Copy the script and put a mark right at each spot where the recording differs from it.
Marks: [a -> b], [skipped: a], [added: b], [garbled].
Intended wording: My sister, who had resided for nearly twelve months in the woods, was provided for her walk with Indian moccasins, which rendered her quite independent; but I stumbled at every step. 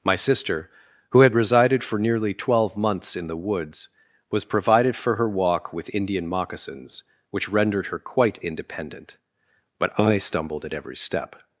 My sister, who had resided for nearly twelve months in the woods, was provided for her walk with Indian moccasins, which rendered her quite independent; but I stumbled at every step.